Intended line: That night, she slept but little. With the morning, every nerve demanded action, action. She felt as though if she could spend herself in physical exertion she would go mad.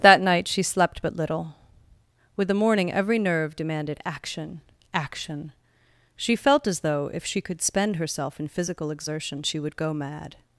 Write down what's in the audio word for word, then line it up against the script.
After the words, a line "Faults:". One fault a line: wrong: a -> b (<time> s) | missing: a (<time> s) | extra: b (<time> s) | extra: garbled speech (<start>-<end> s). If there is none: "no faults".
That night, she slept but little. With the morning, every nerve demanded action, action. She felt as though if she could spend herself in physical exertion she would go mad.
Faults:
no faults